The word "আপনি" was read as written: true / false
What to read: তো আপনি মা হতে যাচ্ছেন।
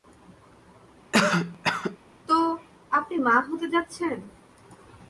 true